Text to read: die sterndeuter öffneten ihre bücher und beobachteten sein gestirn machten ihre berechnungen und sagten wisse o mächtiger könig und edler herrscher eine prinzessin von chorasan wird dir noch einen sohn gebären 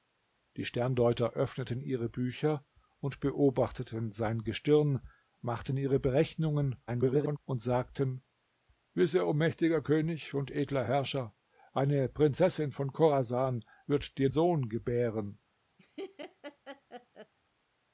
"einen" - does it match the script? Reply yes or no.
no